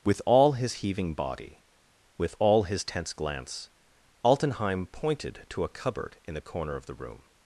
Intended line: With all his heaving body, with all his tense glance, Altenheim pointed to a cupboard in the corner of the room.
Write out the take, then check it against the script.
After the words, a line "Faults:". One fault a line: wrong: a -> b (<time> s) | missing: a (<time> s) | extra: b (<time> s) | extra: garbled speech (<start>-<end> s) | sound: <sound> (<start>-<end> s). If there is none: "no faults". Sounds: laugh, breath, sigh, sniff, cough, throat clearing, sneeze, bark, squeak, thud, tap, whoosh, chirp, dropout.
With all his heaving body, with all his tense glance, Altenheim pointed to a cupboard in the corner of the room.
Faults:
no faults